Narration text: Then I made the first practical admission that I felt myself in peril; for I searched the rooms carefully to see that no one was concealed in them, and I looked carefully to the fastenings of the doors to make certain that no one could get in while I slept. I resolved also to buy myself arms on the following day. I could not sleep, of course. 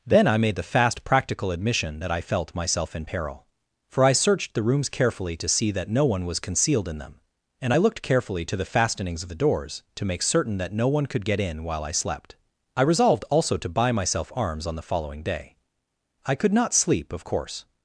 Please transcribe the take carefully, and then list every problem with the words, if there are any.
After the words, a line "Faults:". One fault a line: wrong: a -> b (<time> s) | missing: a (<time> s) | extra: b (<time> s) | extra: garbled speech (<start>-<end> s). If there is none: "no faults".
Then I made the fast practical admission that I felt myself in peril; for I searched the rooms carefully to see that no one was concealed in them, and I looked carefully to the fastenings of the doors to make certain that no one could get in while I slept. I resolved also to buy myself arms on the following day. I could not sleep, of course.
Faults:
wrong: first -> fast (0.6 s)